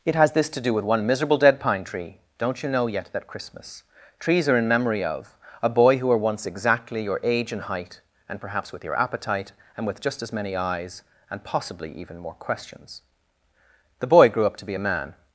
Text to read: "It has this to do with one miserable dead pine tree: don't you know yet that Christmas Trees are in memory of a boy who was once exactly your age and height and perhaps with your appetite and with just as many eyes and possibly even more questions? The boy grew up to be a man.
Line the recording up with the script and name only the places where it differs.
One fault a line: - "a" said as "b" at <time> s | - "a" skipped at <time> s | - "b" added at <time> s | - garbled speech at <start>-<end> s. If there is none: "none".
- "was" said as "were" at 6.1 s